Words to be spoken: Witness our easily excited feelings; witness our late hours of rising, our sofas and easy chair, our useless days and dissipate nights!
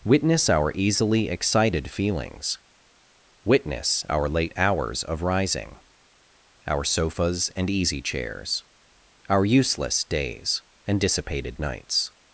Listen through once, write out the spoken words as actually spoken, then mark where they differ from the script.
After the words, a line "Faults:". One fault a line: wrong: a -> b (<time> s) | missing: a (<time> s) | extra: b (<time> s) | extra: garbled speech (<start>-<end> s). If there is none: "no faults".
Witness our easily excited feelings; witness our late hours of rising, our sofas and easy chairs, our useless days and dissipated nights!
Faults:
wrong: chair -> chairs (8.0 s)
wrong: dissipate -> dissipated (11.0 s)